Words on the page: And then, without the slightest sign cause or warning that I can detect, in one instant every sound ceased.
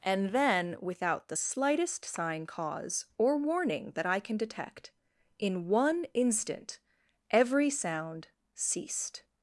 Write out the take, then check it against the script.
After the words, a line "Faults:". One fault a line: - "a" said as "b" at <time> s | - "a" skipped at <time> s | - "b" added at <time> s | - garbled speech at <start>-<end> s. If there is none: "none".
And then, without the slightest sign cause or warning that I can detect, in one instant every sound ceased.
Faults:
none